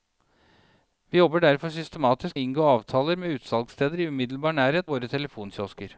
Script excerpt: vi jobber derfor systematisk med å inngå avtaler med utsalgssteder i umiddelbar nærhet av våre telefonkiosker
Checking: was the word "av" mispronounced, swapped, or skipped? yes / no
yes